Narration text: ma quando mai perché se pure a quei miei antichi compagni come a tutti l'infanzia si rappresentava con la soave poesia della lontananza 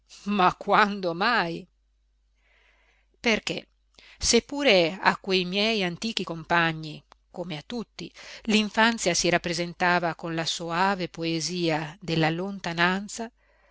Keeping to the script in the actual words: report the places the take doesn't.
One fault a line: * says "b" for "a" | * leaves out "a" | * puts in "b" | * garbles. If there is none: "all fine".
all fine